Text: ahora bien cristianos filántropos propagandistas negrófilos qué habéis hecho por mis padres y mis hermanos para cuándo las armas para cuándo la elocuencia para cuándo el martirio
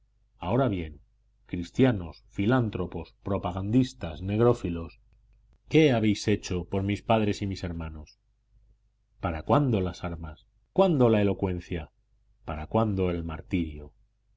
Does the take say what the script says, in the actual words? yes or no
no